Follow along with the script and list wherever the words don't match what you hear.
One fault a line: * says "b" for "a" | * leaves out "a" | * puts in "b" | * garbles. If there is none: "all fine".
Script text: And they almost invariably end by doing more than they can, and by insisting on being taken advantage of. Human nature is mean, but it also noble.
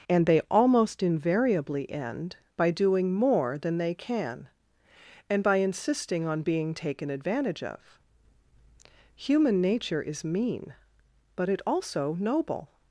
all fine